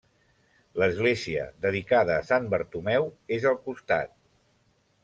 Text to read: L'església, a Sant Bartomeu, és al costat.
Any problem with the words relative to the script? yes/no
yes